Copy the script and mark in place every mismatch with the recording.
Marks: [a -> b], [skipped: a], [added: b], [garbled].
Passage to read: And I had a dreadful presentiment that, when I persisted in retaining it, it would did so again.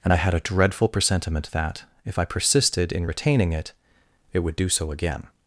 And I had a dreadful presentiment that, [when -> if] I persisted in retaining it, it would [did -> do] so again.